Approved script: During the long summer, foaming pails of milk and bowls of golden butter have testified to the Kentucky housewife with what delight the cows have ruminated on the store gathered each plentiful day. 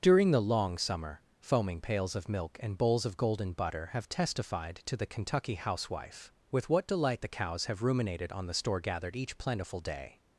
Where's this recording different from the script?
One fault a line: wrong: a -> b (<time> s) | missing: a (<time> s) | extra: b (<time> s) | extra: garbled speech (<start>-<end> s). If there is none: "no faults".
no faults